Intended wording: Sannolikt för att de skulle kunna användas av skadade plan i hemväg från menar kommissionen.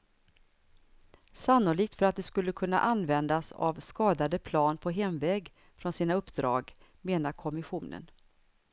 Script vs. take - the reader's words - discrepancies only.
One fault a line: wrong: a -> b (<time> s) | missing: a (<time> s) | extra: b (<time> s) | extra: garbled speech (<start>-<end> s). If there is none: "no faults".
wrong: i -> på (4.8 s)
extra: sina uppdrag (5.9 s)